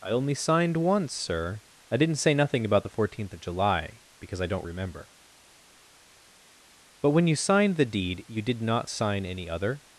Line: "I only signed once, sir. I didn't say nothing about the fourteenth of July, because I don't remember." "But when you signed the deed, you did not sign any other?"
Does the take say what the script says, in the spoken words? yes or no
yes